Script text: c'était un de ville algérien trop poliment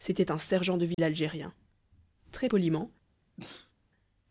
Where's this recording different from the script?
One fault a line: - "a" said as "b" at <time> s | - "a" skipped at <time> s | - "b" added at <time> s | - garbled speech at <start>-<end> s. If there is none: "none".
- "sergent" added at 0.4 s
- "trop" said as "très" at 2.3 s